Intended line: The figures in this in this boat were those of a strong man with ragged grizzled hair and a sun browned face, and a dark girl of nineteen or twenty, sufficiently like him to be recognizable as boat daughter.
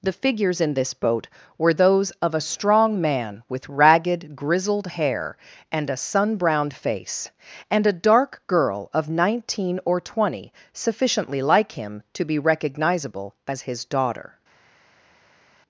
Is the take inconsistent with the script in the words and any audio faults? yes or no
yes